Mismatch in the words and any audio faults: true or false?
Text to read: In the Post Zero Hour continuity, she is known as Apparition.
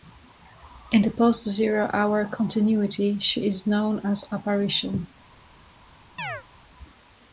true